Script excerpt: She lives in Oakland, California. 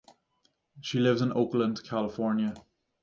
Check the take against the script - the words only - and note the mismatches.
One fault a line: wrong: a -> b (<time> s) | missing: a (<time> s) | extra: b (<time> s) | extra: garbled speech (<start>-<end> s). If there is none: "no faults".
no faults